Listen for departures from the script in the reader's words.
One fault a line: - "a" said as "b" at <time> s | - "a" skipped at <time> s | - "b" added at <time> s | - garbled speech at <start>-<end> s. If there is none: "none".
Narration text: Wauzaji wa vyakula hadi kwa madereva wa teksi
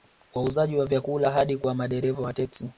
none